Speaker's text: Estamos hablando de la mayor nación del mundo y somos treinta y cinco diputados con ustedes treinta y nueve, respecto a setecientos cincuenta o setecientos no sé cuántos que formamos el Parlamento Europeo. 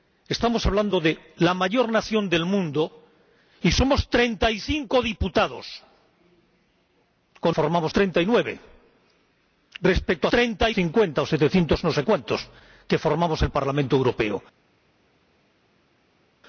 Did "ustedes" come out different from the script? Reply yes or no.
yes